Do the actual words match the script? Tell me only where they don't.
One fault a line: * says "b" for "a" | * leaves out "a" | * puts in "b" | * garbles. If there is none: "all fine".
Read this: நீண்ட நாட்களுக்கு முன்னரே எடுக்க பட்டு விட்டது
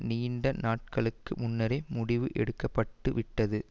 * puts in "முடிவு"